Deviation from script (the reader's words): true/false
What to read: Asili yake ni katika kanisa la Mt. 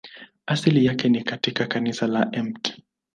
false